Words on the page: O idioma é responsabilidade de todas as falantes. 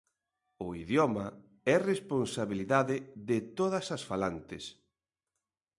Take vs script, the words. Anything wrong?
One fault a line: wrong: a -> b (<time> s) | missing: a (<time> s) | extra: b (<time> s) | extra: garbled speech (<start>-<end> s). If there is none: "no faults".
no faults